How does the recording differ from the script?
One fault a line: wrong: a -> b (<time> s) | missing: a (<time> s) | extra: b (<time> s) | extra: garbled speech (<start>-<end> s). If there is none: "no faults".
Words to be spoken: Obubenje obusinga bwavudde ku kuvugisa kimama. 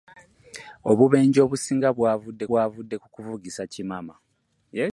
extra: bwavudde (2.5 s)